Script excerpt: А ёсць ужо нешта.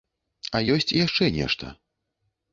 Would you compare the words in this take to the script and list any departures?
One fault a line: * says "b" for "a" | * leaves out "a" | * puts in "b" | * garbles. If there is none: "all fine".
* says "яшчэ" for "ужо"